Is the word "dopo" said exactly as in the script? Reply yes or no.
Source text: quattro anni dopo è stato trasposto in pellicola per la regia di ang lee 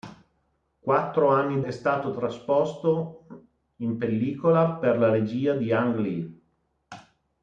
no